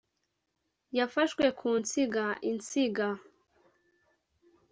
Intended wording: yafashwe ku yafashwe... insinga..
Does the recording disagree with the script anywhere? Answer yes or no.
yes